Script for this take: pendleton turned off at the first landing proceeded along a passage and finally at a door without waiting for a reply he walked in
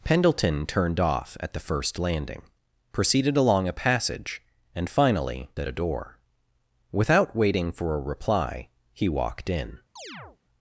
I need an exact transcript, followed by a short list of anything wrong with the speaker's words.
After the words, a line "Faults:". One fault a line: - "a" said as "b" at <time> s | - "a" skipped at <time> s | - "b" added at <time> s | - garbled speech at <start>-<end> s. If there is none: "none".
pendleton turned off at the first landing proceeded along a passage and finally at a door without waiting for a reply he walked in
Faults:
none